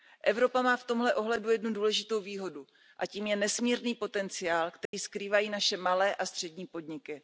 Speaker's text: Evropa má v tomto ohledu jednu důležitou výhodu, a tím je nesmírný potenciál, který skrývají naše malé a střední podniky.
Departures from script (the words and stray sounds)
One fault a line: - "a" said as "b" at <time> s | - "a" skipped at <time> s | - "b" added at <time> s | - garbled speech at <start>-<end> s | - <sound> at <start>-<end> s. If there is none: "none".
- dropout at 4.8-4.9 s